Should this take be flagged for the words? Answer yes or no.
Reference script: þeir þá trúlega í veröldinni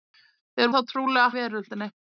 no